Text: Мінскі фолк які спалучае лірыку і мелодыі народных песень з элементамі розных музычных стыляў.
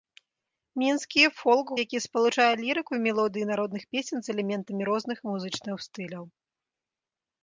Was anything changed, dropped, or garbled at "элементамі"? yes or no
no